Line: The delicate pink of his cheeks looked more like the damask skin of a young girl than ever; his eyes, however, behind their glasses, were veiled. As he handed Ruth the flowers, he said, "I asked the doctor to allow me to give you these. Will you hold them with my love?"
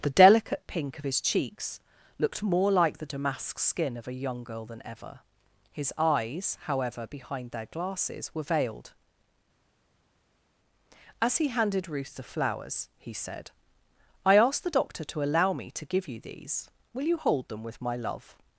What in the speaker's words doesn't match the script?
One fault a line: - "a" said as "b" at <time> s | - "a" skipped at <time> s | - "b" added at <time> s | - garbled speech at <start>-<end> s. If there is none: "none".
none